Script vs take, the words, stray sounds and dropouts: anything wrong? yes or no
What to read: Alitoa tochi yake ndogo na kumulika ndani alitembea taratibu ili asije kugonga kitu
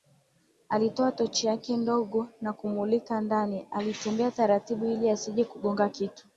no